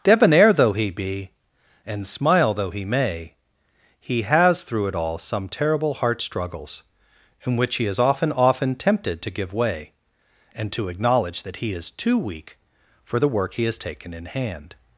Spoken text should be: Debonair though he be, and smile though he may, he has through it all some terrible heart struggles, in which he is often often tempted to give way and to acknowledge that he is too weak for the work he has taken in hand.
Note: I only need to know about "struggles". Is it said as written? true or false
true